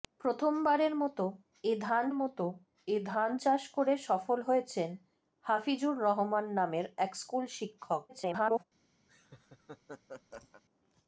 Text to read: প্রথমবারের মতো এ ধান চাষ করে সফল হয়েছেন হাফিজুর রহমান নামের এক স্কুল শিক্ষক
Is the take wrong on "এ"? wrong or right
right